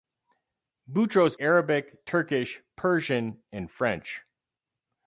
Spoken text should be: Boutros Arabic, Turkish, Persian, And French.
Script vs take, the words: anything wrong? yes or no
no